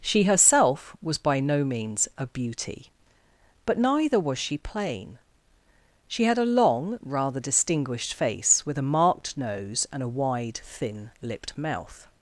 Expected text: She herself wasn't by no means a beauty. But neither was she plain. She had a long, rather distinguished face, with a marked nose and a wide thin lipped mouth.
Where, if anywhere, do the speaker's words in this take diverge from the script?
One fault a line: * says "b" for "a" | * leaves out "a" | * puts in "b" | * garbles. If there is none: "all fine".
* says "was" for "wasn't"